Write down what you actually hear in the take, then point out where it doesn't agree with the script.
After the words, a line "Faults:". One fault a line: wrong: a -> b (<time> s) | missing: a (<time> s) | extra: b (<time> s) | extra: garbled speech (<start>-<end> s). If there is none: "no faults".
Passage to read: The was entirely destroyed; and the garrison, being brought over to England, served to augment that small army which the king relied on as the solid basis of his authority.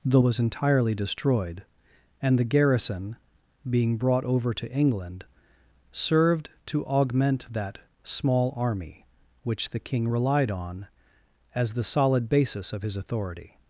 The was entirely destroyed; and the garrison, being brought over to England, served to augment that small army which the king relied on as the solid basis of his authority.
Faults:
no faults